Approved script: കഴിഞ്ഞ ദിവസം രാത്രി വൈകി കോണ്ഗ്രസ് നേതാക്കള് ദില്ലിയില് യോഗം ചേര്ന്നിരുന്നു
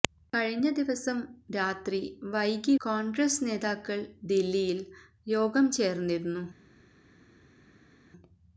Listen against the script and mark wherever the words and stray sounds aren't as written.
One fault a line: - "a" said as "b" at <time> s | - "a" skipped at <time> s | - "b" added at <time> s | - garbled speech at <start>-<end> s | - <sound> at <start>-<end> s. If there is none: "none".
none